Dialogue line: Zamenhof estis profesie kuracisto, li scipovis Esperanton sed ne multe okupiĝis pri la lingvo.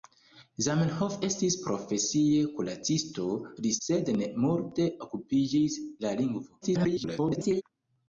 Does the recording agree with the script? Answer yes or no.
no